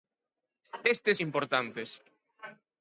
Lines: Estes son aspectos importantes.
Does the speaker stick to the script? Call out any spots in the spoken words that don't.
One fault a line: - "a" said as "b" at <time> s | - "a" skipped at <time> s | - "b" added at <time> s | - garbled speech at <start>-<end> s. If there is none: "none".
- "son aspectos" skipped at 1.2 s